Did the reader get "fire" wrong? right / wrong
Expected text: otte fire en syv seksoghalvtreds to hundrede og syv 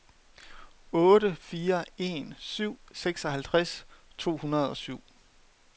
right